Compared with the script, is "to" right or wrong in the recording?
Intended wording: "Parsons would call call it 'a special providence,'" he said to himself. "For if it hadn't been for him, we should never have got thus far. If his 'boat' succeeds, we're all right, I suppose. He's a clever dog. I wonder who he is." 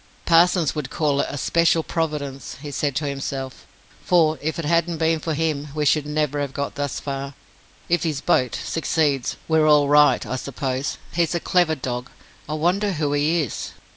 right